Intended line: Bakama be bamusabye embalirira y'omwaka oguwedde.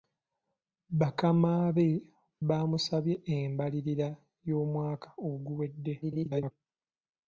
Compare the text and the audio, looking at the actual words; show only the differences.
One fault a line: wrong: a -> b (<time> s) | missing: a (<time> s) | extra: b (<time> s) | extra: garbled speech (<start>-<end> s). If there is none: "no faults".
extra: garbled speech (6.0-6.5 s)